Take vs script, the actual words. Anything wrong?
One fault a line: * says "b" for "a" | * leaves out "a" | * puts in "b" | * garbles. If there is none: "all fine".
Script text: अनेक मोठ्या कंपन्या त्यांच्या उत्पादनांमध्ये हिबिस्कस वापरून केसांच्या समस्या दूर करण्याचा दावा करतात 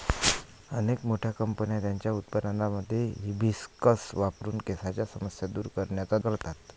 * leaves out "दावा"